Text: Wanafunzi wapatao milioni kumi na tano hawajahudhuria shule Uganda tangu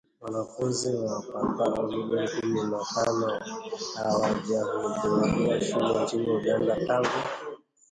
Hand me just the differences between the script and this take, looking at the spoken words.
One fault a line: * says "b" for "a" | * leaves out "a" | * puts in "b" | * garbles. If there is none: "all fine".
* puts in "nchini"